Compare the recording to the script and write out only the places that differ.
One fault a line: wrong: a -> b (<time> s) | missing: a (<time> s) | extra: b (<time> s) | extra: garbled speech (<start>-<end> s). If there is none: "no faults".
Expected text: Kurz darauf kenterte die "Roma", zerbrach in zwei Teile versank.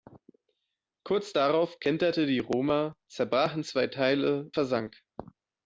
no faults